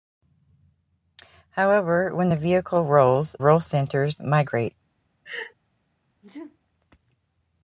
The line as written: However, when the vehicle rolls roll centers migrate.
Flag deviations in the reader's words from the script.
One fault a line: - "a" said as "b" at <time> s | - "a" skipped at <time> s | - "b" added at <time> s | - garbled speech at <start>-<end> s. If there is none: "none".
none